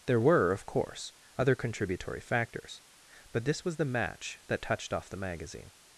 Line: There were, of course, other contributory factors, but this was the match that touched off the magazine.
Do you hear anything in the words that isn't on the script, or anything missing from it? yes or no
no